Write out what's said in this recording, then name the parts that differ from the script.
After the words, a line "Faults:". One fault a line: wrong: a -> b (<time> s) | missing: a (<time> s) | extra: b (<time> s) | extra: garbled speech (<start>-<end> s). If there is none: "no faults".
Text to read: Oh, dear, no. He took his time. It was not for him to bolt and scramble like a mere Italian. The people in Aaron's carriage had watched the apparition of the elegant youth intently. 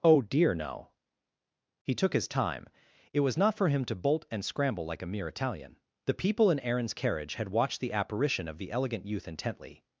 Oh, dear, no. He took his time. It was not for him to bolt and scramble like a mere Italian. The people in Aaron's carriage had watched the apparition of the elegant youth intently.
Faults:
no faults